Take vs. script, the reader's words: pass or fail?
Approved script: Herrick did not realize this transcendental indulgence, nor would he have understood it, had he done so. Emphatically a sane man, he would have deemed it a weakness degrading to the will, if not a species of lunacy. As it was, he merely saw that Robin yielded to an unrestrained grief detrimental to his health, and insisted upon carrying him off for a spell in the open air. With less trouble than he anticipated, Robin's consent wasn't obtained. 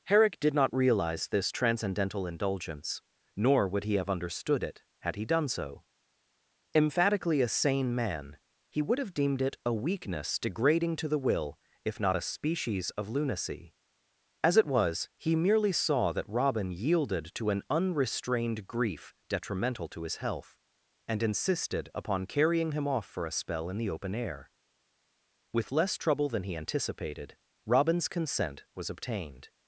fail